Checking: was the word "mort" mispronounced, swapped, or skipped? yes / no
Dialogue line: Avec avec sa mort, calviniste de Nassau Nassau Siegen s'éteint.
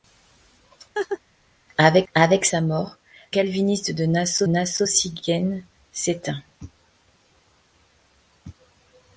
no